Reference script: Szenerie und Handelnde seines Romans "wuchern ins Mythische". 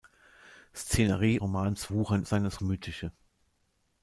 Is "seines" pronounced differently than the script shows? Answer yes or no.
yes